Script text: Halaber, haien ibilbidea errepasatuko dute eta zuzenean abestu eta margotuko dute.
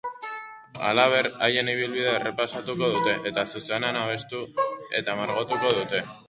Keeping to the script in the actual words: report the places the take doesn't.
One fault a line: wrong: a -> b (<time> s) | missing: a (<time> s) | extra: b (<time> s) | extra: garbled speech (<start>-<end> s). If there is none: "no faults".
no faults